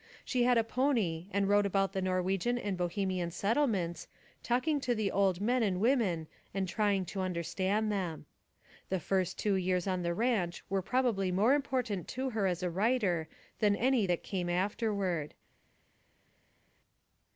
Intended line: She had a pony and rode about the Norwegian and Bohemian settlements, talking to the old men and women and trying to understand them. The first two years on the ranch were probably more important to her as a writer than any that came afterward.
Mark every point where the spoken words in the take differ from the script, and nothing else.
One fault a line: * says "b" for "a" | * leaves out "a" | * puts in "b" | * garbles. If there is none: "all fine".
all fine